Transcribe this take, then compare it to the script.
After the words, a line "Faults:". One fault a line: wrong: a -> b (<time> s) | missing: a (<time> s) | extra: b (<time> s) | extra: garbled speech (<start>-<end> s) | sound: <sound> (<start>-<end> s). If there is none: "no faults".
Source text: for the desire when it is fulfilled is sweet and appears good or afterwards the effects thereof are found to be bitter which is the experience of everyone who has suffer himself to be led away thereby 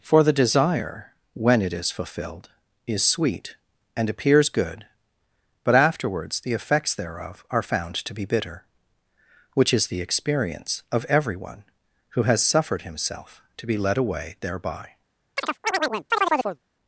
for the desire when it is fulfilled is sweet and appears good but afterwards the effects thereof are found to be bitter which is the experience of everyone who has suffered himself to be led away thereby
Faults:
wrong: or -> but (5.6 s)
wrong: suffer -> suffered (12.4 s)
sound: chirp (15.4-16.6 s)